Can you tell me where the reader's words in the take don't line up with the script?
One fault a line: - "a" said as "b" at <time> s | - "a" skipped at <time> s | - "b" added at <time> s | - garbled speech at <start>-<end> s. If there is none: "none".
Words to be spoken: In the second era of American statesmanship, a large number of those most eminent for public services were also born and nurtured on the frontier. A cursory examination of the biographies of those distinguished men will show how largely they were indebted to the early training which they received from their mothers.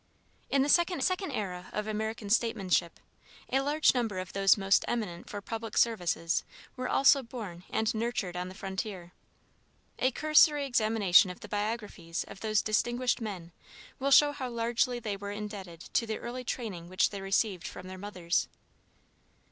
- "second" added at 1.0 s